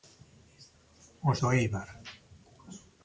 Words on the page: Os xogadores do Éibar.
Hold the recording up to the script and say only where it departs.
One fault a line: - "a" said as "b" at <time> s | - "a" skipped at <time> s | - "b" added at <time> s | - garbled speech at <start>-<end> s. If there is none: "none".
- "xogadores" skipped at 1.4 s